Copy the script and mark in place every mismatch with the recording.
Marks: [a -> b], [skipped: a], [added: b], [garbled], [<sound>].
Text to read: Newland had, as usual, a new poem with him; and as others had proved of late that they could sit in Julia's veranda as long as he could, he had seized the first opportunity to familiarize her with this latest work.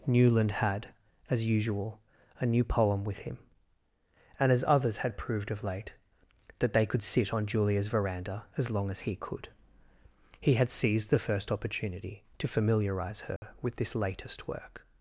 Newland had, as usual, a new poem with him; and as others had proved of late that they could sit [in -> on] Julia's veranda as long as he could, he had seized the first opportunity to familiarize her [dropout] with this latest work.